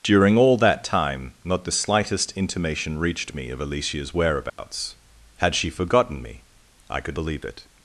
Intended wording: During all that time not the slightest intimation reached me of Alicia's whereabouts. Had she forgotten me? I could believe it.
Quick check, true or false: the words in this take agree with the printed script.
true